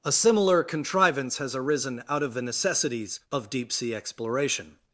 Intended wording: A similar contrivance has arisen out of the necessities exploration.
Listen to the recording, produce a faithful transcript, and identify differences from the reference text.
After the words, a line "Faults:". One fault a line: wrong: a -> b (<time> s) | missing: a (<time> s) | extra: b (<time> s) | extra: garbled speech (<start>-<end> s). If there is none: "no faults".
A similar contrivance has arisen out of the necessities of deep sea exploration.
Faults:
extra: of deep sea (3.3 s)